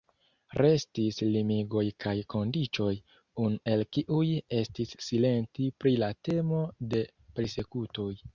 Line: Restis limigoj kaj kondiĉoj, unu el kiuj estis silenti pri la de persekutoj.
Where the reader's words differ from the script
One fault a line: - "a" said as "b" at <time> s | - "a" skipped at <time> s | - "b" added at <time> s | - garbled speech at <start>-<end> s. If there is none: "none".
- "temo" added at 6.3 s